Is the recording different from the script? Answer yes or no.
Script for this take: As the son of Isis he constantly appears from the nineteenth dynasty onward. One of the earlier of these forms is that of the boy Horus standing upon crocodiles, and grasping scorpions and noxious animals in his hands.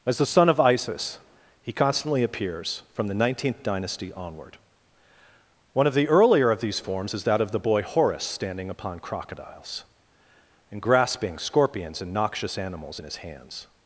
no